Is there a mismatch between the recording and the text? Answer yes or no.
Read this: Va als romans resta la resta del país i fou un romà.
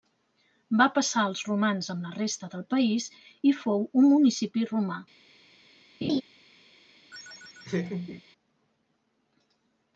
yes